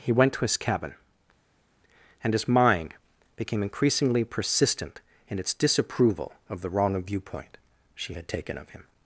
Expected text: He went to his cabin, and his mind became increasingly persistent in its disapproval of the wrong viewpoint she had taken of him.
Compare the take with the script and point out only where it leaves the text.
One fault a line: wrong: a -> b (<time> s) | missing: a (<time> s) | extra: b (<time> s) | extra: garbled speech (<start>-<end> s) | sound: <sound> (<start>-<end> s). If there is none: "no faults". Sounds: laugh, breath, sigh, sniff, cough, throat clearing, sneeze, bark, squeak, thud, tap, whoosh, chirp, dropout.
no faults